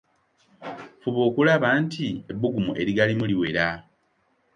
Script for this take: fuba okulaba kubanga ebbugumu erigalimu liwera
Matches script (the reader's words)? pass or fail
fail